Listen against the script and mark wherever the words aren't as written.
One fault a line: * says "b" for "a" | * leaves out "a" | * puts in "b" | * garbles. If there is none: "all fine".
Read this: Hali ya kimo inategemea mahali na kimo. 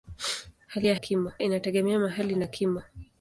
all fine